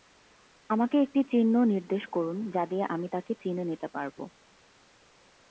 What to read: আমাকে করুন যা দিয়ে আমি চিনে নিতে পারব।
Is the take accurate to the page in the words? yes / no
no